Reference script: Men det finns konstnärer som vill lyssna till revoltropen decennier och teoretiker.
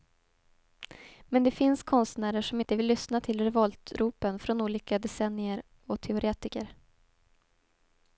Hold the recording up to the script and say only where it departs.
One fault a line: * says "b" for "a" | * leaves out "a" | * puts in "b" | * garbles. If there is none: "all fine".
* puts in "inte"
* puts in "från olika"